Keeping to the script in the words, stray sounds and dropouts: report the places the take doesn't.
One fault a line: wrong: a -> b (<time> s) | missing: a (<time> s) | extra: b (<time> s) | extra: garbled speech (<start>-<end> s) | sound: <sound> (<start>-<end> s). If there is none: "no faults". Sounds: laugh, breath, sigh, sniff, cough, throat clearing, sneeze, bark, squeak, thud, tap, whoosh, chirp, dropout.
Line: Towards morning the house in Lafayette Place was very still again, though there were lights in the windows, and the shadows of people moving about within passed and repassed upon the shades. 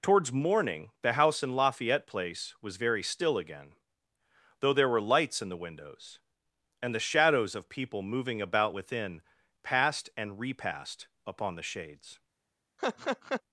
sound: laugh (12.8-13.4 s)